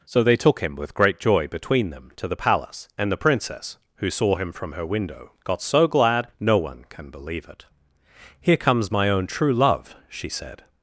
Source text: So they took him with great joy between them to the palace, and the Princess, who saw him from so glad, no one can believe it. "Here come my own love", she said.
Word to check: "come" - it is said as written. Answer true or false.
false